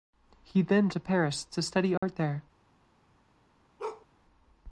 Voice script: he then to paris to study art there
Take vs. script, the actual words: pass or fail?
pass